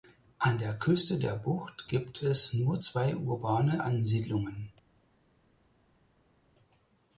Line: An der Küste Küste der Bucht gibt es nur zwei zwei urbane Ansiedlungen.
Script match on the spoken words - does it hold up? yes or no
no